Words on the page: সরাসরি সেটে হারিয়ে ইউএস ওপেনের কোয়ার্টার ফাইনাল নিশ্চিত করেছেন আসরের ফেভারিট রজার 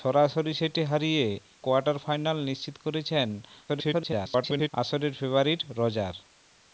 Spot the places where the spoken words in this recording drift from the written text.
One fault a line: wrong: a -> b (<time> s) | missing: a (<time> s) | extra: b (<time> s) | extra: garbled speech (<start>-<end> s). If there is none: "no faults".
missing: ইউএস ওপেনের (1.2 s)
extra: garbled speech (3.7-4.7 s)